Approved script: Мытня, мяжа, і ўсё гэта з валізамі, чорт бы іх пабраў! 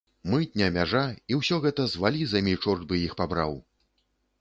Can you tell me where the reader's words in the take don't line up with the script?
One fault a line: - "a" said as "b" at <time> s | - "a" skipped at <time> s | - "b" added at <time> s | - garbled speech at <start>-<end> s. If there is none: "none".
none